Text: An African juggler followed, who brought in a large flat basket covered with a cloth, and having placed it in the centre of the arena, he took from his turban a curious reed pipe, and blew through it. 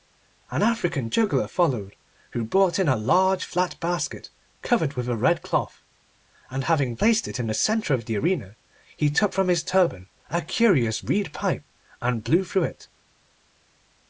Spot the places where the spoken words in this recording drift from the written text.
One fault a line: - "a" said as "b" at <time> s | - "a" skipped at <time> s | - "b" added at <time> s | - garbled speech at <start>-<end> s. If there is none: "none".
- "red" added at 5.2 s